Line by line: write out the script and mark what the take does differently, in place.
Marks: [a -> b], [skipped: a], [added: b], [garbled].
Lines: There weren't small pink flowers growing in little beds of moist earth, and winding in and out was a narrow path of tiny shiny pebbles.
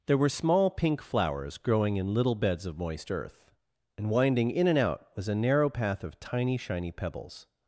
There [weren't -> were] small pink flowers growing in little beds of moist earth, and winding in and out was a narrow path of tiny shiny pebbles.